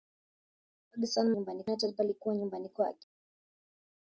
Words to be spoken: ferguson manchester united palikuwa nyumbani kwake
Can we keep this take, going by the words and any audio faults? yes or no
no